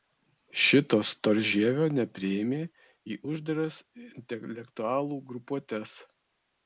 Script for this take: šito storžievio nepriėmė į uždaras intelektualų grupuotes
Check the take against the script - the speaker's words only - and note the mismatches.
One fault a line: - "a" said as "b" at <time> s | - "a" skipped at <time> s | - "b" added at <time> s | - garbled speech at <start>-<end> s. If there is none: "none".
none